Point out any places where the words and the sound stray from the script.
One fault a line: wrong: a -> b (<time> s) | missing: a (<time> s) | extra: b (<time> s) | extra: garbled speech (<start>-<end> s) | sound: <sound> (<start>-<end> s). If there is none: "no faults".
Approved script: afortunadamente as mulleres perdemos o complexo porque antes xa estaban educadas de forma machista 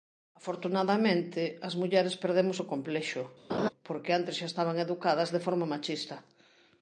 sound: laugh (3.5-3.7 s)